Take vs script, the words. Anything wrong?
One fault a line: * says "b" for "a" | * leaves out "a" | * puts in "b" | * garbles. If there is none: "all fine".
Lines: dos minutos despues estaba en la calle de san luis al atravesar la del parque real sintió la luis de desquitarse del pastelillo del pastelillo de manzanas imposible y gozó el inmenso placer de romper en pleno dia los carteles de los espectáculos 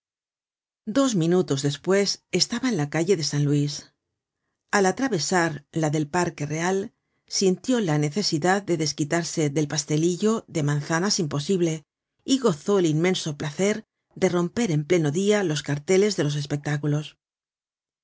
* says "necesidad" for "luis"
* leaves out "del pastelillo"